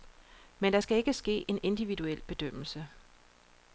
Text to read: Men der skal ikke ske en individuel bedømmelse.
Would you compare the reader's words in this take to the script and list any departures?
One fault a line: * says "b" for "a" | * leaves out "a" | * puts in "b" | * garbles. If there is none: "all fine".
all fine